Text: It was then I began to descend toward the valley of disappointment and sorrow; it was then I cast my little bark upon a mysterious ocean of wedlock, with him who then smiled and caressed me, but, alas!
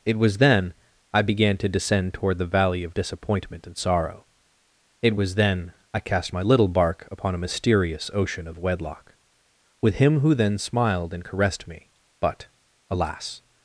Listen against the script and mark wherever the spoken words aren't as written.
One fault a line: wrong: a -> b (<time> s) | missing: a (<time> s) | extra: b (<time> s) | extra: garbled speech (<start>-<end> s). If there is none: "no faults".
no faults